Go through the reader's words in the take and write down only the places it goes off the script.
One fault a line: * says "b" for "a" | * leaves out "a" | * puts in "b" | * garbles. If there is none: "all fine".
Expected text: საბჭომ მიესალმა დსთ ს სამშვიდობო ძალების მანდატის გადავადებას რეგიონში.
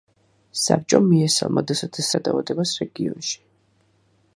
* leaves out "სამშვიდობო ძალების მანდატის"